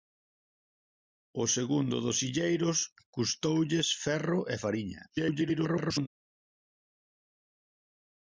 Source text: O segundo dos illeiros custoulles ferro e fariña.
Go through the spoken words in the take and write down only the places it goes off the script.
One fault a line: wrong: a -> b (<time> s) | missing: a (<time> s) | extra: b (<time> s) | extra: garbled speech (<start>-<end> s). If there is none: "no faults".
extra: garbled speech (5.1-6.1 s)